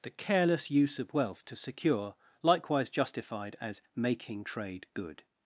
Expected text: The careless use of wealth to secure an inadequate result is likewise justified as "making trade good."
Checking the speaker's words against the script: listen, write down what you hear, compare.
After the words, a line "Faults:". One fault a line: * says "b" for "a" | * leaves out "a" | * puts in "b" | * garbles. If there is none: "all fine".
The careless use of wealth to secure likewise justified as "making trade good."
Faults:
* leaves out "an inadequate result is"